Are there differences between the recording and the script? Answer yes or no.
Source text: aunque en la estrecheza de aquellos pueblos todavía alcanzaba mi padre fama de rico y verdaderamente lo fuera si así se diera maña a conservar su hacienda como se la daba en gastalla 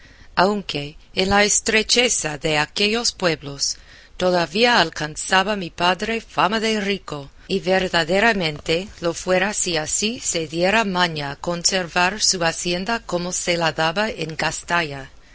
no